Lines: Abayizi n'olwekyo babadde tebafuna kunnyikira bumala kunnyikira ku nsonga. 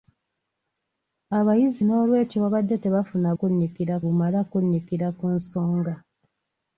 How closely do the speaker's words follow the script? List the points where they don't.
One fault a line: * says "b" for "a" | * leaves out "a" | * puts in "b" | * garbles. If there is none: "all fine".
all fine